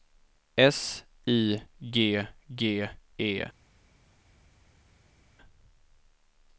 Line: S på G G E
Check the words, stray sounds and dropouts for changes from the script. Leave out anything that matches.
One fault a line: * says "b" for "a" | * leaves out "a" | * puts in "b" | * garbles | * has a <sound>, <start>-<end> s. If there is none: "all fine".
* says "I" for "på"